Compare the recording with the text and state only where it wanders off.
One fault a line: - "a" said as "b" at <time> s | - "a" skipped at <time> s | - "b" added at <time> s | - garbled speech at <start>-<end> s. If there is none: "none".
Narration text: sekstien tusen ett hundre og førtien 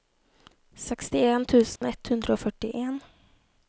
none